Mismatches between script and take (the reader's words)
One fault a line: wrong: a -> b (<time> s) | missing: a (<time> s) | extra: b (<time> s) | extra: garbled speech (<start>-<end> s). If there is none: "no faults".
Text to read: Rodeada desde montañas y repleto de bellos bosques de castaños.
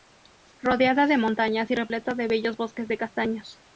wrong: desde -> de (1.1 s)